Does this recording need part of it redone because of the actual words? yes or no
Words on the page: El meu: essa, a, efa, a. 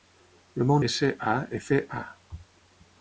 no